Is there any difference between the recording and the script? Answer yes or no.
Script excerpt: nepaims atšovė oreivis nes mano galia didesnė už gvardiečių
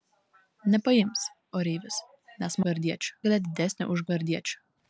yes